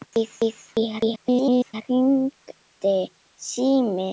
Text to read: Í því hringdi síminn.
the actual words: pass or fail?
fail